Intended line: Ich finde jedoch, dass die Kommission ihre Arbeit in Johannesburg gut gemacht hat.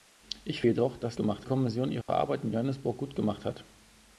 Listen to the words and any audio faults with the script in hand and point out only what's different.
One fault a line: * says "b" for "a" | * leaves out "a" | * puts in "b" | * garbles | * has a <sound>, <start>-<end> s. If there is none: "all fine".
* leaves out "finde"
* says "gemacht" for "die"
* has a dropout, 2.0-2.1 s